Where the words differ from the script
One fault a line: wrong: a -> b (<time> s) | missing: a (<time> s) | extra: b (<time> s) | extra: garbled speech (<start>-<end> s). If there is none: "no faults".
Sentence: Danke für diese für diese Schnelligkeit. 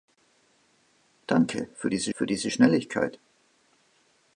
no faults